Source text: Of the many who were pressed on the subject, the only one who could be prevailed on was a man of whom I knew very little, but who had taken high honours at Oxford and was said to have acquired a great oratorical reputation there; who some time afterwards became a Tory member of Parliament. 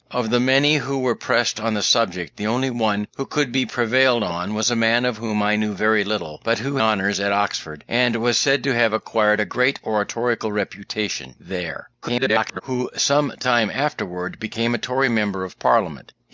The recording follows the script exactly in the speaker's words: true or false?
false